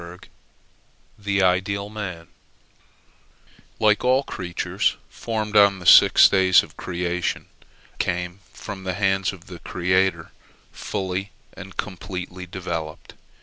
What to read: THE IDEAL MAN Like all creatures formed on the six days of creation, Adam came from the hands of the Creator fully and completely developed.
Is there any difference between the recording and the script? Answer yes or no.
yes